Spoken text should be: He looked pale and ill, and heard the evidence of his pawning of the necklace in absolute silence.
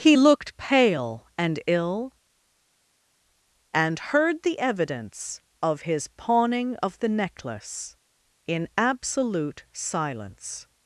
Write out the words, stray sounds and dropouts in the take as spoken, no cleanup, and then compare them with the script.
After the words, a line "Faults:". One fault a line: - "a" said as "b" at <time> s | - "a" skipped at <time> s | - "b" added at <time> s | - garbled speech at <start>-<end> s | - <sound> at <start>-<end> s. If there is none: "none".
He looked pale and ill, and heard the evidence of his pawning of the necklace in absolute silence.
Faults:
none